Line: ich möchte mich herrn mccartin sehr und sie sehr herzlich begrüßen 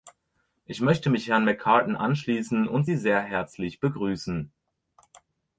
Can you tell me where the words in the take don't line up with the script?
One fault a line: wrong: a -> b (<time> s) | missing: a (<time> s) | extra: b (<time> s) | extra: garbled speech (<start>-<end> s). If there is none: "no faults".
wrong: sehr -> anschließen (1.9 s)